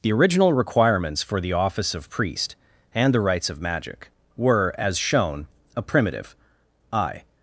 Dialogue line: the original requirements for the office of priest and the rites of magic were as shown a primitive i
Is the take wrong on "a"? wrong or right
right